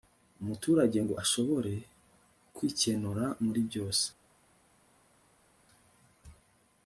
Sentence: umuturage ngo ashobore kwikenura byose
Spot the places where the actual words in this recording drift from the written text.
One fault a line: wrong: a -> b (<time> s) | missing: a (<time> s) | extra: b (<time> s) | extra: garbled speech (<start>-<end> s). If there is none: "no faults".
extra: muri (3.4 s)